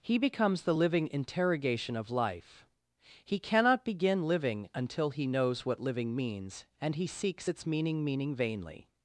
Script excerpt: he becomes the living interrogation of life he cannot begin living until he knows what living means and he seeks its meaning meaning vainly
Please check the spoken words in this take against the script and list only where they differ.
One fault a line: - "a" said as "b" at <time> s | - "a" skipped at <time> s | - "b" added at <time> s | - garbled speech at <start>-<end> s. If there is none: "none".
none